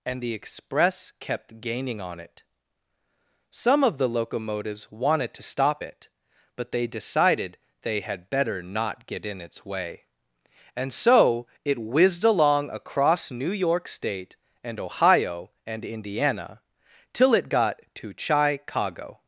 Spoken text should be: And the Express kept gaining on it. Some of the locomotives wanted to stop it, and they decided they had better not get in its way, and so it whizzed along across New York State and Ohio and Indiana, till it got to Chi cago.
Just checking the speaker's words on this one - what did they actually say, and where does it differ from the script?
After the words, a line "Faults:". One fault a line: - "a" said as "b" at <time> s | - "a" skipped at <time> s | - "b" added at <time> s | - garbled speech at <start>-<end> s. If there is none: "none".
And the Express kept gaining on it. Some of the locomotives wanted to stop it, but they decided they had better not get in its way, and so it whizzed along across New York State and Ohio and Indiana, till it got to Chi cago.
Faults:
- "and" said as "but" at 6.5 s